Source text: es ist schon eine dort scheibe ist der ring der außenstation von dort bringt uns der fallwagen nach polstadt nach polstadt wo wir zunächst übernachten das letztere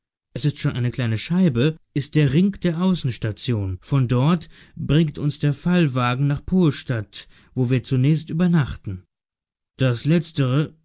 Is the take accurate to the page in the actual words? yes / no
no